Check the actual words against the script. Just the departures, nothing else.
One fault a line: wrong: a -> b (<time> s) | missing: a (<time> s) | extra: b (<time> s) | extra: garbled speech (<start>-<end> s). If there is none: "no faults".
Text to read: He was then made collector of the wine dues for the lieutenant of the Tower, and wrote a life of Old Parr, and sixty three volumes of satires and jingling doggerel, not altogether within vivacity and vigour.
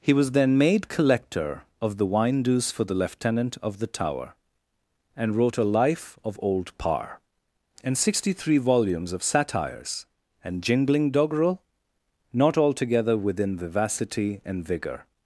no faults